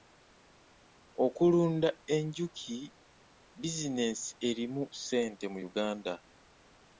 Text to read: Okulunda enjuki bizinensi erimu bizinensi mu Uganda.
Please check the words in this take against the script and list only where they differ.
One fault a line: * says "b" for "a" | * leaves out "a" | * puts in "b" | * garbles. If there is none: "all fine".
* says "ssente" for "bizinensi"